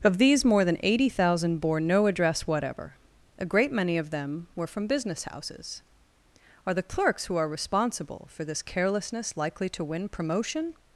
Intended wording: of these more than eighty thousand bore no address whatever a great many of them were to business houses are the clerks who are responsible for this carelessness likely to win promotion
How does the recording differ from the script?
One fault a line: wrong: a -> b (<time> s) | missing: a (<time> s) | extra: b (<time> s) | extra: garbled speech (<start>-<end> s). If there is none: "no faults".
wrong: to -> from (4.7 s)